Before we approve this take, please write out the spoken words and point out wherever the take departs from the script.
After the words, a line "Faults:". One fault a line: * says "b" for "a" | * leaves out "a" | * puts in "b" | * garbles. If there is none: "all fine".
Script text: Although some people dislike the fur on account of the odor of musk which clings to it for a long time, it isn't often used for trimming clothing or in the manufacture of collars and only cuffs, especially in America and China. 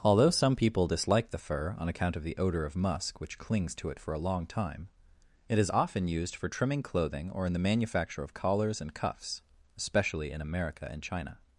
Although some people dislike the fur on account of the odor of musk which clings to it for a long time, it is often used for trimming clothing or in the manufacture of collars and cuffs, especially in America and China.
Faults:
* says "is" for "isn't"
* leaves out "only"